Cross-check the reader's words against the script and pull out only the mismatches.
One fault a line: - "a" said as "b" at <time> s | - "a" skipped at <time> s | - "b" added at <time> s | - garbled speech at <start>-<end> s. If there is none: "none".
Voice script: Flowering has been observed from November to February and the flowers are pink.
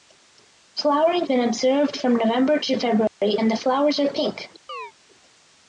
- "has" skipped at 1.3 s